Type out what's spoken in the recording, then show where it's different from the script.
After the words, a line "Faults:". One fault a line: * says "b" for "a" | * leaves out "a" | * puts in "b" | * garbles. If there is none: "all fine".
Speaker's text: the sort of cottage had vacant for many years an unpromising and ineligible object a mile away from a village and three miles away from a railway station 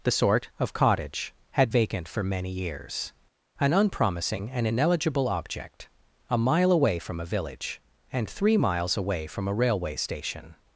the sort of cottage had vacant for many years an unpromising and ineligible object a mile away from a village and three miles away from a railway station
Faults:
all fine